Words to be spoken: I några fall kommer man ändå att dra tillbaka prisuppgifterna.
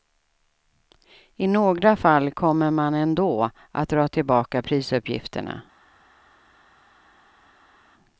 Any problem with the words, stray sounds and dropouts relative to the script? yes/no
no